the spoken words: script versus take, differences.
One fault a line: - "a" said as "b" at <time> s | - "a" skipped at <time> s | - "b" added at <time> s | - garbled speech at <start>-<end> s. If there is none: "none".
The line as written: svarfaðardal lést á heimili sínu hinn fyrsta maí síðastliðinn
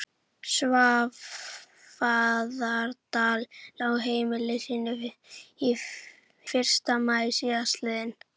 - "lést" skipped at 3.5 s
- "hinn" skipped at 4.9 s